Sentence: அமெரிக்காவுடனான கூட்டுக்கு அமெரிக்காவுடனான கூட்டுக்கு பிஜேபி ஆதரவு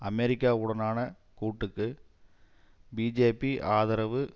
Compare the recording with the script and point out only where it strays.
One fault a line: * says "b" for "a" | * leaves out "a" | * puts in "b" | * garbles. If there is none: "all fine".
* leaves out "அமெரிக்காவுடனான கூட்டுக்கு"